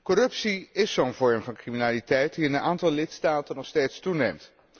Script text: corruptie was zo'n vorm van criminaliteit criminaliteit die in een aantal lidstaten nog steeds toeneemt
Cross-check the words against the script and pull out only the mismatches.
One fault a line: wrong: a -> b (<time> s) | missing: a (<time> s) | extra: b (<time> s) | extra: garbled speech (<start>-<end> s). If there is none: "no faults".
wrong: was -> is (0.7 s)
missing: criminaliteit (2.3 s)